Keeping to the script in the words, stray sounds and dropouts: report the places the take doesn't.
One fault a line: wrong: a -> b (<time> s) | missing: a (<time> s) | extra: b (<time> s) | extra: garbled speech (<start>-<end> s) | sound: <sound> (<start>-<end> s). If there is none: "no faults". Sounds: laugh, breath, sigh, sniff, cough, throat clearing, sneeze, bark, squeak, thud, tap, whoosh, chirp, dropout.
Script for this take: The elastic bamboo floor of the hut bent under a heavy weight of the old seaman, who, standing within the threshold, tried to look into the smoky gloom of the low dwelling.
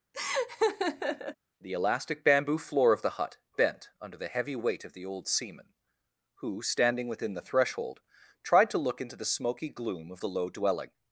sound: laugh (0.1-1.3 s)
wrong: a -> the (4.2 s)